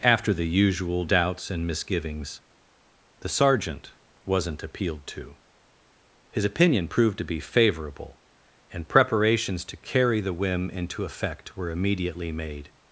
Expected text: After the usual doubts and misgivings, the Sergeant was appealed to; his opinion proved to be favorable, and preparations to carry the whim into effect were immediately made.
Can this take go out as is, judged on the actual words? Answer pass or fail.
fail